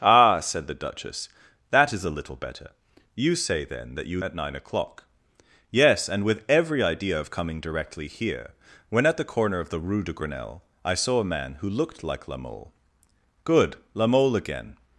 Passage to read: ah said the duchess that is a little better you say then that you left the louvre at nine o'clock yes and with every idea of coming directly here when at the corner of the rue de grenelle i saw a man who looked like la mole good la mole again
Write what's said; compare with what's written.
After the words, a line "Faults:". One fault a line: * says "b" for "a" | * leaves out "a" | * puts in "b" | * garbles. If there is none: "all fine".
ah said the duchess that is a little better you say then that you at nine o'clock yes and with every idea of coming directly here when at the corner of the rue de grenelle i saw a man who looked like la mole good la mole again
Faults:
* leaves out "left the louvre"